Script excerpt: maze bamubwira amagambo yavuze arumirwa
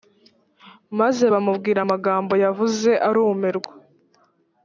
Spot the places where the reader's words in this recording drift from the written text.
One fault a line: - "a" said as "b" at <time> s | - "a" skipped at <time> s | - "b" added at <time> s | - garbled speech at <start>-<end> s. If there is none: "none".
none